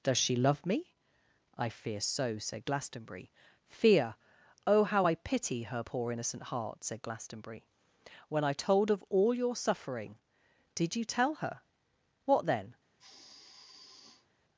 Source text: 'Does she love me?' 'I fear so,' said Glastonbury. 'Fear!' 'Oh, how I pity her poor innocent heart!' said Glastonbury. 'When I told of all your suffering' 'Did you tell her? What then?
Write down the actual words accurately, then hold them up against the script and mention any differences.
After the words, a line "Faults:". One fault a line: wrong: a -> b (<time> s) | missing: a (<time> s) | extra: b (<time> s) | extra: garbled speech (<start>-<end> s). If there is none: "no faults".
'Does she love me?' 'I fear so,' said Glastonbury. 'Fear!' 'Oh, how I pity her poor innocent heart!' said Glastonbury. 'When I told of all your suffering' 'Did you tell her? What then?
Faults:
no faults